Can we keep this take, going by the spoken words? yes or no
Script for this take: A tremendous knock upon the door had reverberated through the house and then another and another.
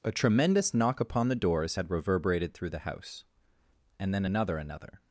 no